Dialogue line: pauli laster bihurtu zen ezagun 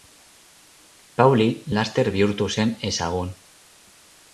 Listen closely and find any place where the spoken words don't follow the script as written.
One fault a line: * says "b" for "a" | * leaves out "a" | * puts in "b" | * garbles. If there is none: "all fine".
all fine